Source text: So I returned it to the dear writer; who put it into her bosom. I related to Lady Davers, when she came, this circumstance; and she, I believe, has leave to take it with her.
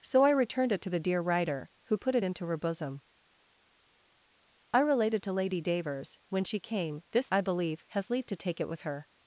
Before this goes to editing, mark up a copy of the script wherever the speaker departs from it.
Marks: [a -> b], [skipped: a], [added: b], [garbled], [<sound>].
So I returned it to the dear writer; who put it into her bosom. I related to Lady Davers, when she came, this [skipped: circumstance; and she,] I believe, has leave to take it with her.